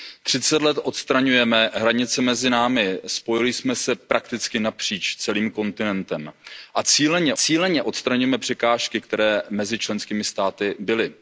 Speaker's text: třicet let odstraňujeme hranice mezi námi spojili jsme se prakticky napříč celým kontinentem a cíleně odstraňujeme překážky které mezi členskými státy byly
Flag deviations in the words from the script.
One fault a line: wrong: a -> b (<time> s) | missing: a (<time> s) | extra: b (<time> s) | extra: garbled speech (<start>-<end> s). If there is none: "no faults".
extra: cíleně (7.3 s)